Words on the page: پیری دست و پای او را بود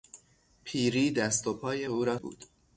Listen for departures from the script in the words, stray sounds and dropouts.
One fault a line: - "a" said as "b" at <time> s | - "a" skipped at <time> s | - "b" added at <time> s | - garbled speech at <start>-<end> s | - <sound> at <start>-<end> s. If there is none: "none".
none